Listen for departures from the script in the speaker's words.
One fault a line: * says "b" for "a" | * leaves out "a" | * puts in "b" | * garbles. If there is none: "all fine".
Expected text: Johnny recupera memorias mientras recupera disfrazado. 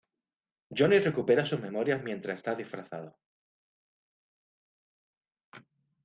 * puts in "sus"
* says "está" for "recupera"